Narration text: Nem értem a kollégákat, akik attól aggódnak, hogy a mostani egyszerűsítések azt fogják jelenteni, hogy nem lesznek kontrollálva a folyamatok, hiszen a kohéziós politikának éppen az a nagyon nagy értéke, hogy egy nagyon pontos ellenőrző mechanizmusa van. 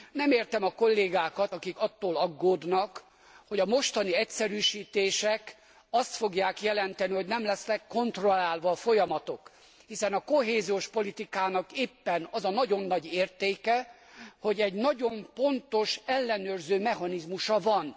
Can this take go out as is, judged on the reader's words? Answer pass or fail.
pass